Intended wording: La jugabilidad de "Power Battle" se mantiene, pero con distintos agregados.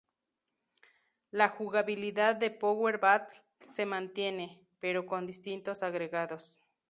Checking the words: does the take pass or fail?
pass